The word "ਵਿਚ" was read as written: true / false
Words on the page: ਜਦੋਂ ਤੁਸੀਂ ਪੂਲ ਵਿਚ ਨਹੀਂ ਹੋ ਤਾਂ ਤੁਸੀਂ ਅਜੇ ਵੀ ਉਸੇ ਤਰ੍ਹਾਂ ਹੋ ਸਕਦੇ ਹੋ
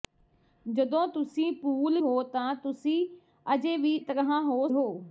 false